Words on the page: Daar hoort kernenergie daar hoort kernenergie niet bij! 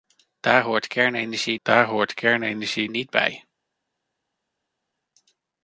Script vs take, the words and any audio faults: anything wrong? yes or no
no